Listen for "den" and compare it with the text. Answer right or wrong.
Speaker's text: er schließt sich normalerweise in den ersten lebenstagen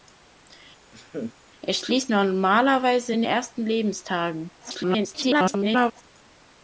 wrong